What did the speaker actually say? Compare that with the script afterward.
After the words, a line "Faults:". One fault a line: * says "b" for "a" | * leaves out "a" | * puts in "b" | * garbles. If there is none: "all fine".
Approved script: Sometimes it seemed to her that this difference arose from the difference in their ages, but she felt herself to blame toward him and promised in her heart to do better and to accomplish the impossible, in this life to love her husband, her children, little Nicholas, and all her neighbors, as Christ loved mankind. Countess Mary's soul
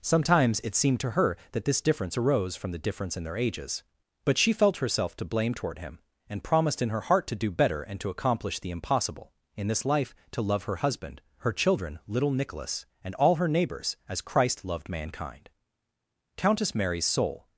Sometimes it seemed to her that this difference arose from the difference in their ages, but she felt herself to blame toward him and promised in her heart to do better and to accomplish the impossible, in this life to love her husband, her children, little Nicholas, and all her neighbors, as Christ loved mankind. Countess Mary's soul
Faults:
all fine